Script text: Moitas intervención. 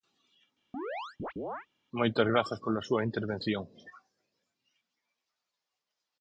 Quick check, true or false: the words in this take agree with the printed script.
false